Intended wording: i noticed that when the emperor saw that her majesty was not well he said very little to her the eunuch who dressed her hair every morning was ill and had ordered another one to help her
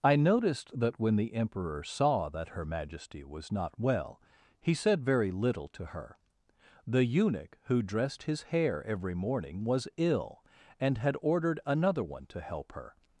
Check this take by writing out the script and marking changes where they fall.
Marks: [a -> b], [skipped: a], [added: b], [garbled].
i noticed that when the emperor saw that her majesty was not well he said very little to her the eunuch who dressed [her -> his] hair every morning was ill and had ordered another one to help her